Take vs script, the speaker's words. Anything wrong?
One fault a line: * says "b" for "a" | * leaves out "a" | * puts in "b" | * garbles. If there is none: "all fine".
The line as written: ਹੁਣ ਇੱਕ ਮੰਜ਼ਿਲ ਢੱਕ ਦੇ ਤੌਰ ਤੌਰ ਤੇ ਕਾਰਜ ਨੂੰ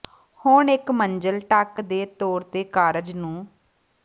* leaves out "ਤੌਰ"